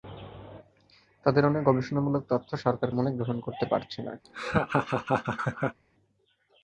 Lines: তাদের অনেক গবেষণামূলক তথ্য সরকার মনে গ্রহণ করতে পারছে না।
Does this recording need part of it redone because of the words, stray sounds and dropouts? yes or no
yes